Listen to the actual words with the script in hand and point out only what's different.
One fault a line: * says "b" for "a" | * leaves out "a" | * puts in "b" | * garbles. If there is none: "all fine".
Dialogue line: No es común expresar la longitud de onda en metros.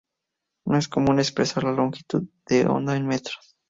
all fine